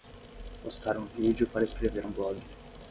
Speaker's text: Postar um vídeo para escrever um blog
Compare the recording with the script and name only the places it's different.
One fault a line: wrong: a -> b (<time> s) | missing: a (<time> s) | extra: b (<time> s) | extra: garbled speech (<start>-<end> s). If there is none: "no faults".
no faults